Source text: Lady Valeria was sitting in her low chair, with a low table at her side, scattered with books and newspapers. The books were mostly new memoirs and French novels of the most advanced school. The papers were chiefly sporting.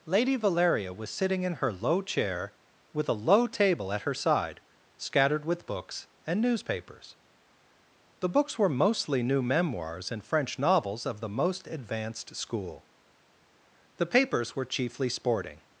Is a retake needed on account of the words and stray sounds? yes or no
no